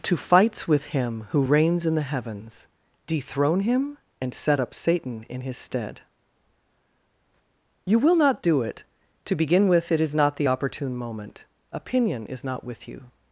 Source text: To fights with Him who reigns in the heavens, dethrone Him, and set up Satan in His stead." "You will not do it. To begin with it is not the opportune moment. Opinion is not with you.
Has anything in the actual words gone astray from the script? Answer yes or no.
no